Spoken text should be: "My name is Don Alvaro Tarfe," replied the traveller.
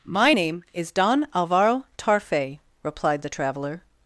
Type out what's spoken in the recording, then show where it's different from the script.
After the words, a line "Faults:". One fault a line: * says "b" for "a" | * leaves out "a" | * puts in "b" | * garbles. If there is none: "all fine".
"My name is Don Alvaro Tarfe," replied the traveller.
Faults:
all fine